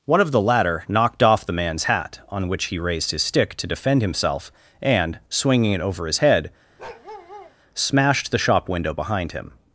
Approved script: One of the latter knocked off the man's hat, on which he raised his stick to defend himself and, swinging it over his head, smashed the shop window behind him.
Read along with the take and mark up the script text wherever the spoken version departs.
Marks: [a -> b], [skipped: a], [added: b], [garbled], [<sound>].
One of the latter knocked off the man's hat, on which he raised his stick to defend himself and, swinging it over his head, [bark] smashed the shop window behind him.